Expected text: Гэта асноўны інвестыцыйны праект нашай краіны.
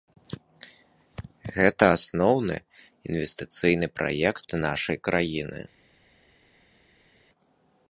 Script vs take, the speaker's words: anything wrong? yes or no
no